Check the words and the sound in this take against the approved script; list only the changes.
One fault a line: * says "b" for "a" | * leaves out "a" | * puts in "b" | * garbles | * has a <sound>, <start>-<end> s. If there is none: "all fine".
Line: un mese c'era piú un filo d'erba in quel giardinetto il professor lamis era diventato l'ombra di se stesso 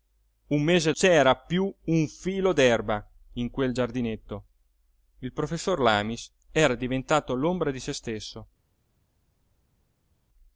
all fine